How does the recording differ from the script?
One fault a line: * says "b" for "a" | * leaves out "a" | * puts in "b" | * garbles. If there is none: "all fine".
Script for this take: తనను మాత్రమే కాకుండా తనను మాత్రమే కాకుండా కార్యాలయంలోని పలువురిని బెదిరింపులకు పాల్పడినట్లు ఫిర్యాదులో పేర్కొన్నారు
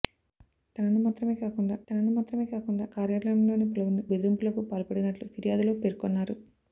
all fine